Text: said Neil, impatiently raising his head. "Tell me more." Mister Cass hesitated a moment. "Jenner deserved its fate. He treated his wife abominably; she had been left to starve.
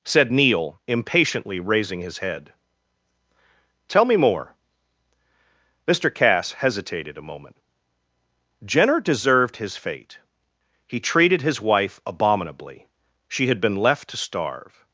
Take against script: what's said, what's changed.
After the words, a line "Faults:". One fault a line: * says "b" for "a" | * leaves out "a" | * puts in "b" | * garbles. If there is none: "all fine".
said Neil, impatiently raising his head. "Tell me more." Mister Cass hesitated a moment. "Jenner deserved his fate. He treated his wife abominably; she had been left to starve.
Faults:
* says "his" for "its"